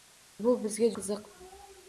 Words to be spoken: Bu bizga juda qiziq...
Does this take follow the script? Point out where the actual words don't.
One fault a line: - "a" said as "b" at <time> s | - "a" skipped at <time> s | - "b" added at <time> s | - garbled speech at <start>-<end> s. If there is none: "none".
- "juda" skipped at 0.9 s